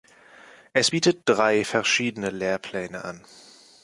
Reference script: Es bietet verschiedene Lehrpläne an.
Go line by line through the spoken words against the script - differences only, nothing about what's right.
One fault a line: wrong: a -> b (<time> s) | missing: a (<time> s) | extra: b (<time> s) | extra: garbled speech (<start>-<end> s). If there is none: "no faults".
extra: drei (1.2 s)